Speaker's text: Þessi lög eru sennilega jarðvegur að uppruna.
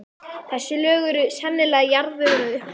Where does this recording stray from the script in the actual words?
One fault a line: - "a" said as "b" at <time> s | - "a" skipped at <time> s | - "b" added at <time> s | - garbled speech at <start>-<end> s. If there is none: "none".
none